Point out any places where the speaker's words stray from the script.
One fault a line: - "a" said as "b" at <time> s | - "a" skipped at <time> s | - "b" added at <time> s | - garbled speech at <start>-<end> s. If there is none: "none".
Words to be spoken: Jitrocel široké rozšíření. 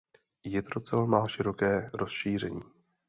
- "má" added at 1.1 s